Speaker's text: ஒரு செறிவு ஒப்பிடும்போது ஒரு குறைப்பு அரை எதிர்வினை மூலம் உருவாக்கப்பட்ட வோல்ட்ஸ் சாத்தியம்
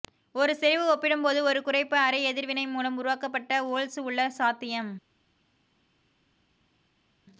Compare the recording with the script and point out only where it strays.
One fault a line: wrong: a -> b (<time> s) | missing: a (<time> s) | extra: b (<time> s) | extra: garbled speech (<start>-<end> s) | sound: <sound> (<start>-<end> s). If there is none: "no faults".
extra: உள்ள (4.0 s)